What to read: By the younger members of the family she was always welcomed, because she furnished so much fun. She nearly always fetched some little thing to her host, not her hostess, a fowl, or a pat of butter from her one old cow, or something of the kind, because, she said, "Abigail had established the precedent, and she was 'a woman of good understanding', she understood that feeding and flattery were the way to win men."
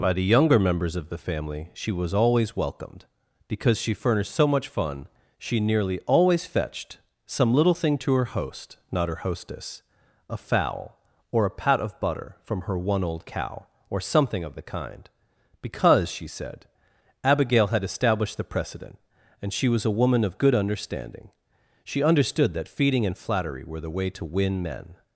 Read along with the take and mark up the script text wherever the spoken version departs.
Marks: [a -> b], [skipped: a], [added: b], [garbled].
By the younger members of the family she was always welcomed, because she furnished so much fun. She nearly always fetched some little thing to her host, not her hostess, a fowl, or a pat of butter from her one old cow, or something of the kind, because, she said, "Abigail had established the precedent, and she was 'a woman of good understanding', she understood that feeding and flattery were the way to win men."